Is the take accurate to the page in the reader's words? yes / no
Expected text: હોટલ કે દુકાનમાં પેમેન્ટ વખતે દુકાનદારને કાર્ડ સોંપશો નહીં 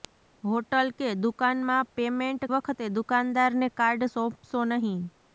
yes